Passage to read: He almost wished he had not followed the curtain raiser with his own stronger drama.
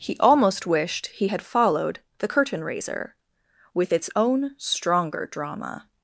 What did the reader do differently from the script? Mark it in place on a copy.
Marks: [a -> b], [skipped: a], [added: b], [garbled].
He almost wished he had [skipped: not] followed the curtain raiser with [his -> its] own stronger drama.